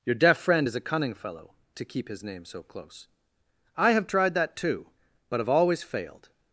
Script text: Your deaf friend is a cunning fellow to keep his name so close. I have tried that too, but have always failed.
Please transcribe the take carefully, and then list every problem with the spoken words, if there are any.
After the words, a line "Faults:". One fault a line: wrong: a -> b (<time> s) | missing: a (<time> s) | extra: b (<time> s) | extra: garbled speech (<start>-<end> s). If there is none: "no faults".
Your deaf friend is a cunning fellow to keep his name so close. I have tried that too, but have always failed.
Faults:
no faults